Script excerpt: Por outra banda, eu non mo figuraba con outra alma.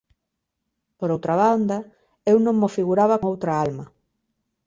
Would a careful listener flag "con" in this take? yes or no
yes